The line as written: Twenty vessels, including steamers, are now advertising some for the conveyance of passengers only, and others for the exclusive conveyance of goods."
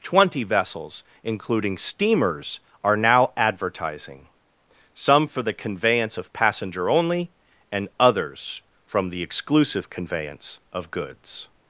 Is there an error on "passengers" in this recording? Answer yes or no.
yes